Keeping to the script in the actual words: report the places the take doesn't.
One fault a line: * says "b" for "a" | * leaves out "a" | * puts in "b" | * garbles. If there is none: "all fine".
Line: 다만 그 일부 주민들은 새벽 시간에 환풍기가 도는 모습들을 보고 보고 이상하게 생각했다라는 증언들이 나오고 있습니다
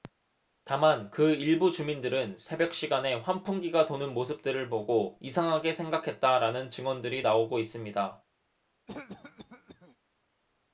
* leaves out "보고"